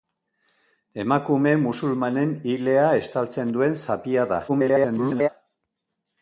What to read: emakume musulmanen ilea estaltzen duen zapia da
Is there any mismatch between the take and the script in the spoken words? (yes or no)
yes